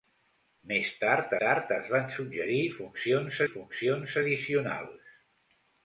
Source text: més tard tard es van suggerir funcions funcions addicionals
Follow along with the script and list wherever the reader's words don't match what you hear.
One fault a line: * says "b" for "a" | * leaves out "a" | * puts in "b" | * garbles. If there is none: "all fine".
all fine